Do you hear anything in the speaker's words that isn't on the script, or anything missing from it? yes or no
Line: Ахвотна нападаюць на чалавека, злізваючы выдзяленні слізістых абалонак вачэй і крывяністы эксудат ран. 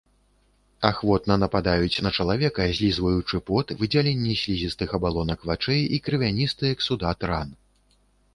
yes